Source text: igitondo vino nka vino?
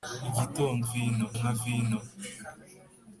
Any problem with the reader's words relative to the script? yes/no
no